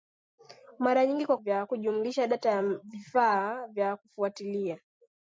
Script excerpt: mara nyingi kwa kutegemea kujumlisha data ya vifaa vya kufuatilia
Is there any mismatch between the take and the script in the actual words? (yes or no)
yes